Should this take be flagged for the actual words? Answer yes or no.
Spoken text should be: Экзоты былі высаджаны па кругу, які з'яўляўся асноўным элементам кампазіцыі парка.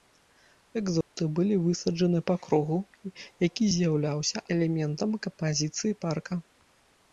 yes